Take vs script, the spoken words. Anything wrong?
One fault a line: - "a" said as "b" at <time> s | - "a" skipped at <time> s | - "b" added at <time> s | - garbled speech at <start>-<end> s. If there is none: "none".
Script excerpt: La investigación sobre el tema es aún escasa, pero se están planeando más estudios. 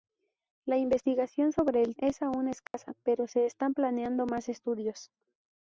- "tema" skipped at 1.9 s